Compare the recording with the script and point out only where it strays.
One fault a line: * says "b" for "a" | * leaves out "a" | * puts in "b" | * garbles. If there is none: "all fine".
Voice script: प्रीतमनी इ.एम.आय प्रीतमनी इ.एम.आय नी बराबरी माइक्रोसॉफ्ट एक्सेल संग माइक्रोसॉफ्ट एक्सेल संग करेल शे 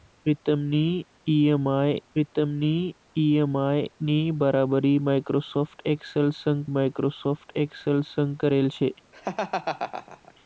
all fine